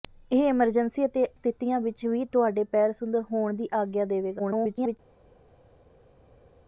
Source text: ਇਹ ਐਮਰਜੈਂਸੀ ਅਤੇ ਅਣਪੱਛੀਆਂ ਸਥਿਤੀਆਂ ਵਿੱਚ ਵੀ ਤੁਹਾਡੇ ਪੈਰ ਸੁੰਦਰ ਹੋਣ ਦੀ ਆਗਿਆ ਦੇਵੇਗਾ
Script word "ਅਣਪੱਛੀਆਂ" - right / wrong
wrong